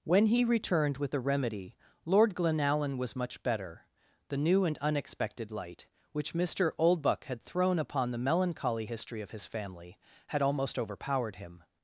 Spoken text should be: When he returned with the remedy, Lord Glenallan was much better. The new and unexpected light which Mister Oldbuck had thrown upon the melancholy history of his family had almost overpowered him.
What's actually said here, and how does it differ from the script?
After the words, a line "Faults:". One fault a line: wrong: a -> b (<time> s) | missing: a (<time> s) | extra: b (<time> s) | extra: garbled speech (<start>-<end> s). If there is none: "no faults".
When he returned with the remedy, Lord Glenallan was much better. The new and unexpected light which Mister Oldbuck had thrown upon the melancholy history of his family had almost overpowered him.
Faults:
no faults